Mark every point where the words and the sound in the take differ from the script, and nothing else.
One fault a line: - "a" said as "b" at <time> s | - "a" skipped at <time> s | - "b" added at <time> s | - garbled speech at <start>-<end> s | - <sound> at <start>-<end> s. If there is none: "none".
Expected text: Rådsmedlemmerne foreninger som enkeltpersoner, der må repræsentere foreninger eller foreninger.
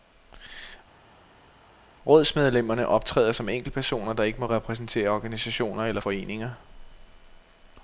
- "foreninger" said as "optræder" at 2.9 s
- "ikke" added at 4.2 s
- "foreninger" said as "organisationer" at 5.1 s